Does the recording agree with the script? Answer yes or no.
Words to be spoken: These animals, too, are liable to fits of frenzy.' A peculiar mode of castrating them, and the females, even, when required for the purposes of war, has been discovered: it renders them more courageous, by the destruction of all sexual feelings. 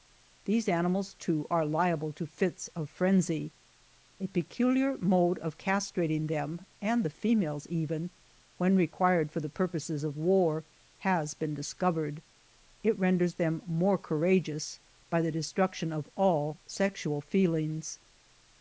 yes